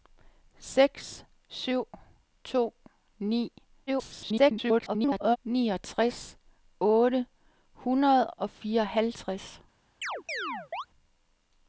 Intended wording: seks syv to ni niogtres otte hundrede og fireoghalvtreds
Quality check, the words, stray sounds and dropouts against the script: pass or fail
fail